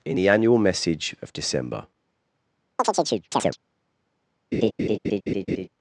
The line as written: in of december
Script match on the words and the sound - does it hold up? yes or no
no